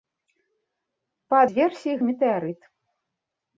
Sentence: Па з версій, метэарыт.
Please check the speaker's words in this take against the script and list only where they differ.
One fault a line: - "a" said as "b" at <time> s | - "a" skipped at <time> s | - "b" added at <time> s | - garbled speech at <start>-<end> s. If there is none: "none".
none